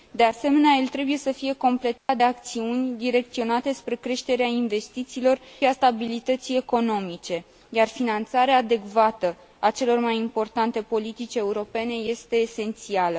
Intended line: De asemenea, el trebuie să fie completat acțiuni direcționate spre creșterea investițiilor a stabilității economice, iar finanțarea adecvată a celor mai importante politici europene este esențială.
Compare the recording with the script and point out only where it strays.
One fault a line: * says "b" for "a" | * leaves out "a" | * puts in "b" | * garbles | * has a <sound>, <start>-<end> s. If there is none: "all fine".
* has a dropout, 2.0-2.1 s